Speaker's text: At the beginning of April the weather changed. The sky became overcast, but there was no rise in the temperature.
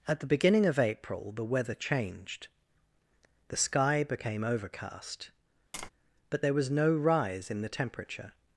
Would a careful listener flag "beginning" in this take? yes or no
no